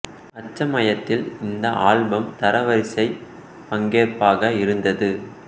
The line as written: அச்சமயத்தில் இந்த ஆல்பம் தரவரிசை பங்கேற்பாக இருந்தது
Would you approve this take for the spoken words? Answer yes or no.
yes